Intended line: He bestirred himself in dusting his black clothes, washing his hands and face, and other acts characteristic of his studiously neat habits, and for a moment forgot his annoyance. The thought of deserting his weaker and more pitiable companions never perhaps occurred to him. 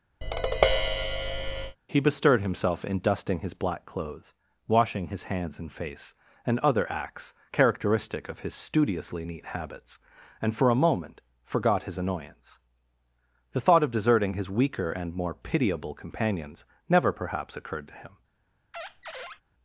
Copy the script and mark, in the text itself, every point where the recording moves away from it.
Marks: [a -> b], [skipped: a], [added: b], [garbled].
He bestirred himself in dusting his black clothes, washing his hands and face, and other acts characteristic of his studiously neat habits, and for a moment forgot his annoyance. The thought of deserting his weaker and more pitiable companions never perhaps occurred to him.